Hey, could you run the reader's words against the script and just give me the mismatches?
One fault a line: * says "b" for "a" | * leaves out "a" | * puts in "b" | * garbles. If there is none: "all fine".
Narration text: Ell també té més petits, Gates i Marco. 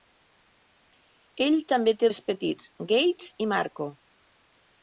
all fine